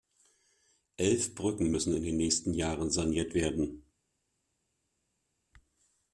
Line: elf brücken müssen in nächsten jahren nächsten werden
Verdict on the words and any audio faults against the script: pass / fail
fail